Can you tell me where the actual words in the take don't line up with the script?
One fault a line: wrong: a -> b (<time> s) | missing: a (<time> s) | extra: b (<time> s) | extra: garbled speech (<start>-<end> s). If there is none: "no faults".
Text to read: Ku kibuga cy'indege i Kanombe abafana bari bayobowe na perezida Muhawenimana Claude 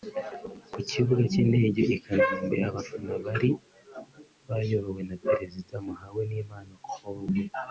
no faults